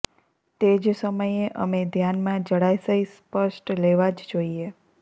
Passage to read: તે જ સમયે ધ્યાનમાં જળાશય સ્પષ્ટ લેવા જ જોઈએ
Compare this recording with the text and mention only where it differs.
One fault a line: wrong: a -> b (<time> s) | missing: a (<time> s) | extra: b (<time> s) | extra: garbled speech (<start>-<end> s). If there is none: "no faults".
extra: અમે (1.6 s)